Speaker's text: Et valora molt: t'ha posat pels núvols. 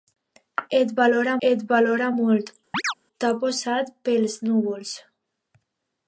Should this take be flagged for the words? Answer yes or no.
yes